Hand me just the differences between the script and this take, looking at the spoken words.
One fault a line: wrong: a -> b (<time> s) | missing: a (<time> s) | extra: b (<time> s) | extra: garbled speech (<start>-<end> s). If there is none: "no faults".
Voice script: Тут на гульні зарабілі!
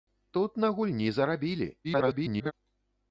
extra: garbled speech (1.8-2.5 s)